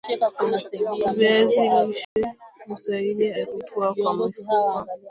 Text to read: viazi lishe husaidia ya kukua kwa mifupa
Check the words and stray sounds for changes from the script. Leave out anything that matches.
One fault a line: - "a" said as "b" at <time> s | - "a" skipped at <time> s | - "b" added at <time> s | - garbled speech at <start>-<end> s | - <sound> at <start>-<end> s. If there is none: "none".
- dropout at 2.0-2.2 s